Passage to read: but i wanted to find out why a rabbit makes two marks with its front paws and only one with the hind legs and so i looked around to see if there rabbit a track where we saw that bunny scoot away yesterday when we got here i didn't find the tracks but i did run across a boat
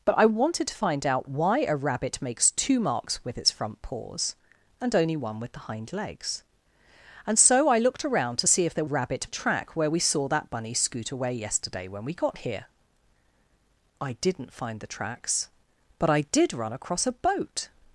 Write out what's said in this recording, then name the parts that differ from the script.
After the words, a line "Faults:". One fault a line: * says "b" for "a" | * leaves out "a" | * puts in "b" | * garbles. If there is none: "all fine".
but i wanted to find out why a rabbit makes two marks with its front paws and only one with the hind legs and so i looked around to see if there rabbit a track where we saw that bunny scoot away yesterday when we got here i didn't find the tracks but i did run across a boat
Faults:
all fine